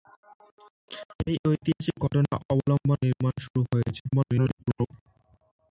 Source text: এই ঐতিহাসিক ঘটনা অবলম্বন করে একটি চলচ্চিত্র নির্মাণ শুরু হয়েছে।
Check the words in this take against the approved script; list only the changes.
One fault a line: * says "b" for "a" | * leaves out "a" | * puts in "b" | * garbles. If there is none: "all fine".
* leaves out "করে একটি চলচ্চিত্র"
* garbles